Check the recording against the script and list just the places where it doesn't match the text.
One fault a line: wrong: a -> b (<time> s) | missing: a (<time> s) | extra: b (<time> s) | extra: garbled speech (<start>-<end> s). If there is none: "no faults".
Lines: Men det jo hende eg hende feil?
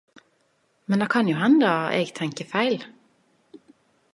extra: kan (1.1 s)
wrong: hende -> tenker (2.2 s)